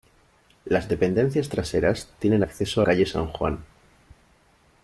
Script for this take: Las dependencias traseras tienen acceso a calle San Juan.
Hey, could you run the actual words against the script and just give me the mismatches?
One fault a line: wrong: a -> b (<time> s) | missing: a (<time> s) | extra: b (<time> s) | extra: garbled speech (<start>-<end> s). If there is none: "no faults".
no faults